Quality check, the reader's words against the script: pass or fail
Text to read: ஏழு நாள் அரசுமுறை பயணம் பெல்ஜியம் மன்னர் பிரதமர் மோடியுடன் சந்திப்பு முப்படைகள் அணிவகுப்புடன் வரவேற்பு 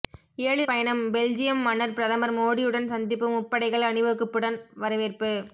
fail